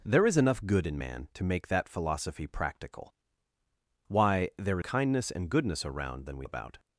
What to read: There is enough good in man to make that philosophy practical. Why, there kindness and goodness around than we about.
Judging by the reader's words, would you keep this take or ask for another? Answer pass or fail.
pass